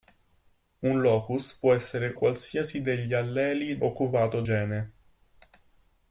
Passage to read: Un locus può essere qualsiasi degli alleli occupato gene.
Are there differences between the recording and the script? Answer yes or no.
no